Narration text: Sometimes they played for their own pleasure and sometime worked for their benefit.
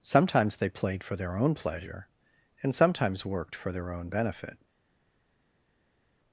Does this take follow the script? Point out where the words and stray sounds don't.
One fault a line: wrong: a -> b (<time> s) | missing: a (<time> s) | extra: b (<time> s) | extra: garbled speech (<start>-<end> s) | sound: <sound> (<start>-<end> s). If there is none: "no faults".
wrong: sometime -> sometimes (2.7 s)
extra: own (3.9 s)